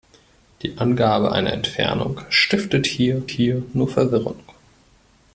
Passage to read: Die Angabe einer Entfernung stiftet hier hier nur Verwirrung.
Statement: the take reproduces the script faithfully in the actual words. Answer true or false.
true